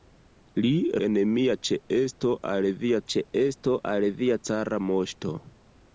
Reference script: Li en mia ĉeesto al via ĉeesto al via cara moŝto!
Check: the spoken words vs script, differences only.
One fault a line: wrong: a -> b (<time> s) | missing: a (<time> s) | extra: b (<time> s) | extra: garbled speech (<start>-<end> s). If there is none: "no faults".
no faults